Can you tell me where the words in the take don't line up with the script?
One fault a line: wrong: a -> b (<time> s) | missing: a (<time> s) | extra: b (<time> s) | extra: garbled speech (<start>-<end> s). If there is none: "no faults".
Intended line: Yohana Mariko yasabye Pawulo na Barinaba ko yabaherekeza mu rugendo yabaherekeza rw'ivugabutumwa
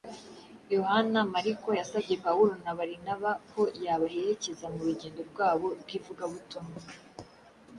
wrong: yabaherekeza -> rwabo (5.3 s)